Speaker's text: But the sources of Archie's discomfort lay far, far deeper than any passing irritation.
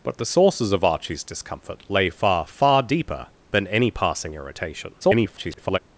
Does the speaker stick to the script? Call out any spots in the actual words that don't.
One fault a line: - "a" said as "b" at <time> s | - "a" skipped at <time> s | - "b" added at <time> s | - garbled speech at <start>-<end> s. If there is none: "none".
- garbled speech at 5.0-5.8 s